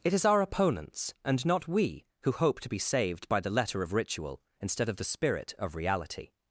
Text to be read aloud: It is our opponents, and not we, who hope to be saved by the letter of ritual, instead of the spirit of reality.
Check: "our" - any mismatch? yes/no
no